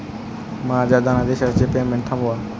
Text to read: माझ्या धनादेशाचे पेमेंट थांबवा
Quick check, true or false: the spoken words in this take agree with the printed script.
true